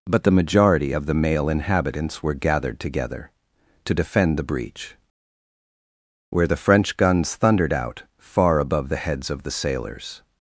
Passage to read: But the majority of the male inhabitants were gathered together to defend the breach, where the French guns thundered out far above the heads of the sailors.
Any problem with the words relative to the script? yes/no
no